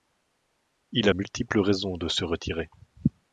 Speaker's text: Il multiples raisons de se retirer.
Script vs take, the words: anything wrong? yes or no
no